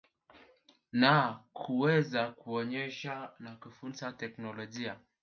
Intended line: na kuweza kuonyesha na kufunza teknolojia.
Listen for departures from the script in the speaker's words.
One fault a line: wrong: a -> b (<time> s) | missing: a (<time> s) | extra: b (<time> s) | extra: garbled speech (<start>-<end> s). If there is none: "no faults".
no faults